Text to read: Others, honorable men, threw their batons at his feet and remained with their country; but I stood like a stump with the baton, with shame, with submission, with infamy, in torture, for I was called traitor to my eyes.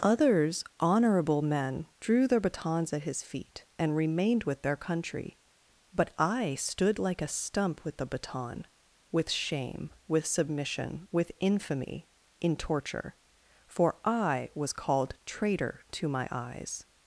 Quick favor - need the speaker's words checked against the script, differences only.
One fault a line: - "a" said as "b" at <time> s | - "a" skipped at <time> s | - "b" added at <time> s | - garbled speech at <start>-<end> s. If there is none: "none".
- "threw" said as "drew" at 2.0 s